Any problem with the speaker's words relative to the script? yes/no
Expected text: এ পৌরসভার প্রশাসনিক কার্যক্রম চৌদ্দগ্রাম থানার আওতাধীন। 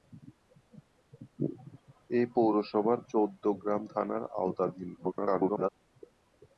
yes